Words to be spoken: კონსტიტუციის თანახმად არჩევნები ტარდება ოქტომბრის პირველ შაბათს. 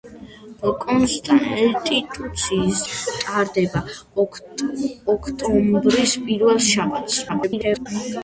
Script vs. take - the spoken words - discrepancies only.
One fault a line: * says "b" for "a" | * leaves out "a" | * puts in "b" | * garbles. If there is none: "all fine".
* leaves out "თანახმად არჩევნები"
* garbles